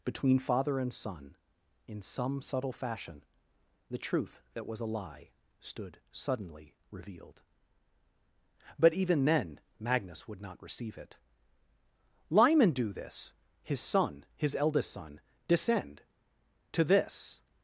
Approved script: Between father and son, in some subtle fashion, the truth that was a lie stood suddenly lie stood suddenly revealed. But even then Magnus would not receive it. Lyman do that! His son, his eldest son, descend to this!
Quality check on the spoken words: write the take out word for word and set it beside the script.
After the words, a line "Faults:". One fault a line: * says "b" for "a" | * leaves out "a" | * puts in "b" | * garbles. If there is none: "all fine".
Between father and son, in some subtle fashion, the truth that was a lie stood suddenly revealed. But even then Magnus would not receive it. Lyman do this! His son, his eldest son, descend to this!
Faults:
* leaves out "lie stood suddenly"
* says "this" for "that"